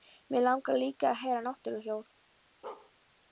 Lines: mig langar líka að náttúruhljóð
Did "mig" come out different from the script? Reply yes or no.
no